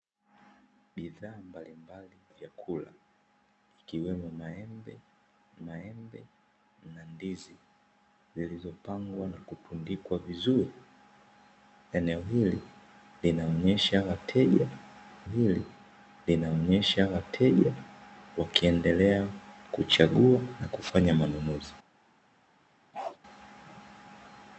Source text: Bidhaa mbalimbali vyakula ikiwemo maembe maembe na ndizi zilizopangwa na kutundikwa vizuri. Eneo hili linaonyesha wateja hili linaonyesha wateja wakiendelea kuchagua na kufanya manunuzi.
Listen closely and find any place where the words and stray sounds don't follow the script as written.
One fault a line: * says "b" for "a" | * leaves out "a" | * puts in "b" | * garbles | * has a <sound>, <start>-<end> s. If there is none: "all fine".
* has a bark, 22.9-23.2 s